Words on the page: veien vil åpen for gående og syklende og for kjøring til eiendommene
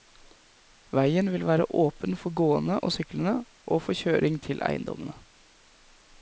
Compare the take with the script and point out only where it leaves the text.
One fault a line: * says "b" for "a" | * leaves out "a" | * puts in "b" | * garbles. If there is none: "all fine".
* puts in "være"